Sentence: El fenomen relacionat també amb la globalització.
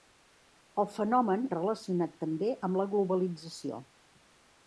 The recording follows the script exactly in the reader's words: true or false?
true